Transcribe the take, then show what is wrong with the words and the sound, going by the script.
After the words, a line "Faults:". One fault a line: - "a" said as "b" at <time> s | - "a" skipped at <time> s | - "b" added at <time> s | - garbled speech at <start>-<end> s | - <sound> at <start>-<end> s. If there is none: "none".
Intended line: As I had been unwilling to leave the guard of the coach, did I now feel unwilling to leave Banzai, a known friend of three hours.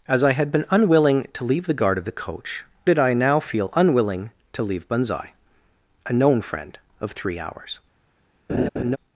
As I had been unwilling to leave the guard of the coach, did I now feel unwilling to leave Banzai, a known friend of three hours.
Faults:
- laugh at 8.5-9.0 s